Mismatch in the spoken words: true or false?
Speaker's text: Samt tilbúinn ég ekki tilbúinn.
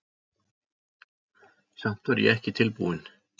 true